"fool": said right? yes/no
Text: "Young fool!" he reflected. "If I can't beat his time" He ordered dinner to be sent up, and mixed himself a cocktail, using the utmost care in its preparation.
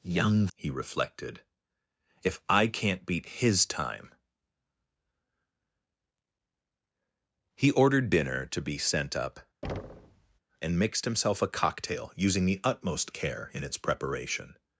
no